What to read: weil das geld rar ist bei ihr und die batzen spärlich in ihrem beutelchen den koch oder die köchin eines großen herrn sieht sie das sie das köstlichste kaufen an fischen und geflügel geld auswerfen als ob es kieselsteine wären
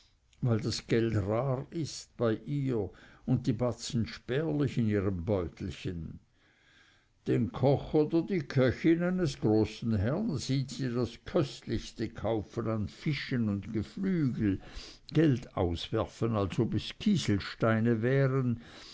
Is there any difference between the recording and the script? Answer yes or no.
yes